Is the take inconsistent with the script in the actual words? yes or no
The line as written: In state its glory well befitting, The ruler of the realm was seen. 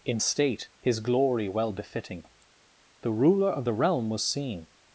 yes